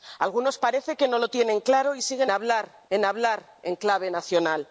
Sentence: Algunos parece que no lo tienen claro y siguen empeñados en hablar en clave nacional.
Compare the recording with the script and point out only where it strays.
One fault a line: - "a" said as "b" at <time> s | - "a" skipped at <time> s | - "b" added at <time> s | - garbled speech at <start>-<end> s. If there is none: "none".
- "empeñados" said as "hablar" at 2.3 s